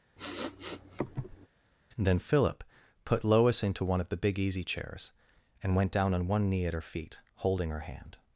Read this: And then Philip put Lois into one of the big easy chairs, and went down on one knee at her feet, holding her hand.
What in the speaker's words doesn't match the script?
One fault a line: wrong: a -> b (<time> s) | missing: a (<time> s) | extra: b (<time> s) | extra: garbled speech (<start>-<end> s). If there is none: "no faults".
missing: And (2.0 s)